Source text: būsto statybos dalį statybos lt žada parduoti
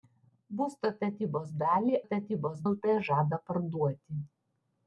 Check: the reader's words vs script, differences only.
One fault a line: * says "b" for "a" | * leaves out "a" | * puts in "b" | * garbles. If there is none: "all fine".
all fine